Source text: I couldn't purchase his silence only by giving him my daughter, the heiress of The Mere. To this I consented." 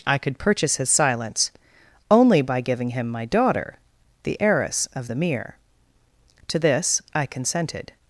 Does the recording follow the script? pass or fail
fail